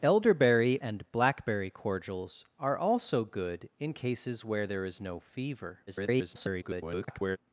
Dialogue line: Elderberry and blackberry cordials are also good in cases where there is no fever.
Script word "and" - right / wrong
right